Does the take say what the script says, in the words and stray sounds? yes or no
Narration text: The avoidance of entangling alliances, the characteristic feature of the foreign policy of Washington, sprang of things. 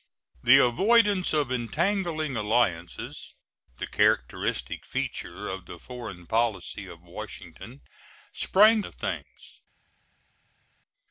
yes